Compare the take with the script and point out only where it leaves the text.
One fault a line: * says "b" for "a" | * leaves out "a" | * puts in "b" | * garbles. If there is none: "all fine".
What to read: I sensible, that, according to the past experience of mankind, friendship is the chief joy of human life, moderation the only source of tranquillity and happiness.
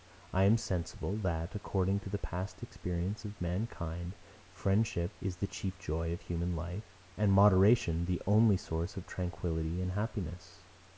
* puts in "am"
* puts in "and"